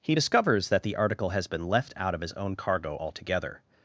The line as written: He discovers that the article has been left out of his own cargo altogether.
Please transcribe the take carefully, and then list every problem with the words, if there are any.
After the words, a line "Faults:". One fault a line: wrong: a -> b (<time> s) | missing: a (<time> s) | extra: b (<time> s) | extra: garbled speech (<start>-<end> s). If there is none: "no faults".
He discovers that the article has been left out of his own cargo altogether.
Faults:
no faults